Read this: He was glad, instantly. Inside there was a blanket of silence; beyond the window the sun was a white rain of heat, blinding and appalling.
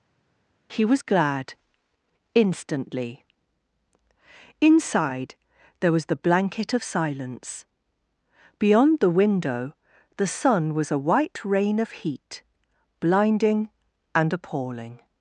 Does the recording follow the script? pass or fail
fail